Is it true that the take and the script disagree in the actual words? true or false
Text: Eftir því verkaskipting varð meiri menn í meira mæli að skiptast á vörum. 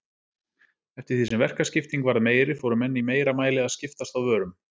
true